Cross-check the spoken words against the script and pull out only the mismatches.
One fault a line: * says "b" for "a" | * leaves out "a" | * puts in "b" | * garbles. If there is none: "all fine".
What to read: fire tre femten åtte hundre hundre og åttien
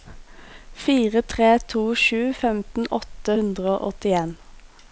* puts in "to sju"
* leaves out "hundre"